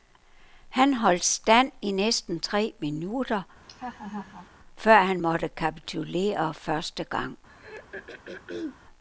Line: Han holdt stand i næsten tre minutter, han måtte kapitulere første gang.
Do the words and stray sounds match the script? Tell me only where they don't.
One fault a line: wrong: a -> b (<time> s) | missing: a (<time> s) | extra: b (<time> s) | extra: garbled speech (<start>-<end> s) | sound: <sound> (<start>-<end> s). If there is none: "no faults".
sound: laugh (3.6-4.5 s)
extra: før (4.8 s)
sound: throat clearing (7.5-8.8 s)